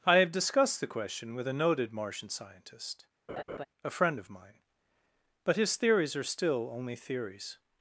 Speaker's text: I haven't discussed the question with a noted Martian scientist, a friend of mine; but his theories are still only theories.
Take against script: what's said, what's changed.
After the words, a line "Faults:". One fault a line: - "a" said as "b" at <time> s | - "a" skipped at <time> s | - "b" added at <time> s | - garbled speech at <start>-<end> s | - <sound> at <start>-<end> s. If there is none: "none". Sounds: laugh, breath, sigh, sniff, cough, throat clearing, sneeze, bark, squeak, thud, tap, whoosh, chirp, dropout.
I have discussed the question with a noted Martian scientist, a friend of mine; but his theories are still only theories.
Faults:
- "haven't" said as "have" at 0.2 s
- laugh at 3.3-3.7 s